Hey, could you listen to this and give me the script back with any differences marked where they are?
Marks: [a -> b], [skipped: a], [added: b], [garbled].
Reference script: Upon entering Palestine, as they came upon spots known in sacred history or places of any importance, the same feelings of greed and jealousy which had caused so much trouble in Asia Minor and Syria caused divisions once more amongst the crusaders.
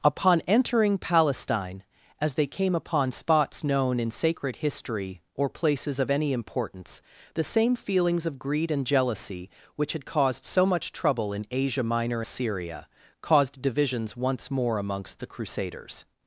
Upon entering Palestine, as they came upon spots known in sacred history or places of any importance, the same feelings of greed and jealousy which had caused so much trouble in Asia Minor [skipped: and] Syria caused divisions once more amongst the crusaders.